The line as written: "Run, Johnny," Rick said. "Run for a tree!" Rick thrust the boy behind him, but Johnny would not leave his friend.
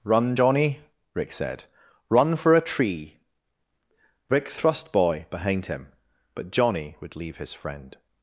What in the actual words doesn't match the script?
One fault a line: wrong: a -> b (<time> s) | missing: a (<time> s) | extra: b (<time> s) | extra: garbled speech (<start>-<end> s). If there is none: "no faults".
missing: the (4.9 s)
missing: not (7.1 s)